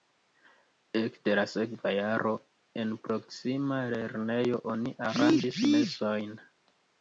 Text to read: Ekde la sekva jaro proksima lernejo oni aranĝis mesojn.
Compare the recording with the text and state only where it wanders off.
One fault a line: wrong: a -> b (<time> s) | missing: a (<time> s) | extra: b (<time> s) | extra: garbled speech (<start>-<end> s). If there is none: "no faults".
extra: en (2.9 s)